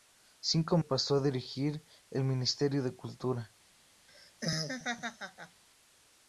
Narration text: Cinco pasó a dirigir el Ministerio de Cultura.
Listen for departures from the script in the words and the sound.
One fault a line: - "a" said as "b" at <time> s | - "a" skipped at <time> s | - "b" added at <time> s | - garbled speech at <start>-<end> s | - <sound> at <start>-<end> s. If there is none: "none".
- laugh at 4.1-5.6 s